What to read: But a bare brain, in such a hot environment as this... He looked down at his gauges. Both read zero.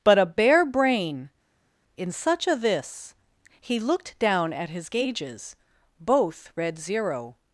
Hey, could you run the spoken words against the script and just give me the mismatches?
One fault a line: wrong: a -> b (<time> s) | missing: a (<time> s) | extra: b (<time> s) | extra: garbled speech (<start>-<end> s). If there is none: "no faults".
missing: hot environment as (2.5 s)